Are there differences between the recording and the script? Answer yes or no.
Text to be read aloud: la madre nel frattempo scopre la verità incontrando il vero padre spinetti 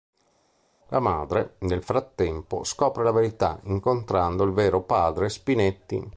no